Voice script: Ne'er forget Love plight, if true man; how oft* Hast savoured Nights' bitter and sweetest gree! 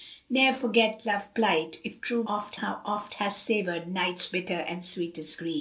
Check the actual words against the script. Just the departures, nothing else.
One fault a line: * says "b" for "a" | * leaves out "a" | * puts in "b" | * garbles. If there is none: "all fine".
* says "oft" for "man"